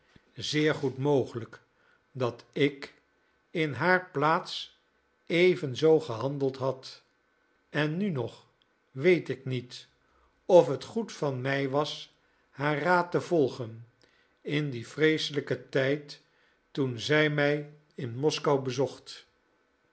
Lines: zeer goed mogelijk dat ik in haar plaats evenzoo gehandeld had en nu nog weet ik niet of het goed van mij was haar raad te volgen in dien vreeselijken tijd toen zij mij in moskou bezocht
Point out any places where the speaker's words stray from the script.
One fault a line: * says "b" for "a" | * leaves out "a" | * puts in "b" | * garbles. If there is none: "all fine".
all fine